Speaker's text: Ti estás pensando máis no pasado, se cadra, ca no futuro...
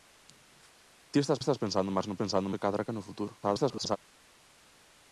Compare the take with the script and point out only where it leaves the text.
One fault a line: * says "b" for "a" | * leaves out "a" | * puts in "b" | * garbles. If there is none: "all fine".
* puts in "estás"
* says "pensando" for "pasado"
* garbles